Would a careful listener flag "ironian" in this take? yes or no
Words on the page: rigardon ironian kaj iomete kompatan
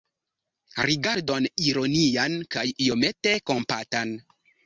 no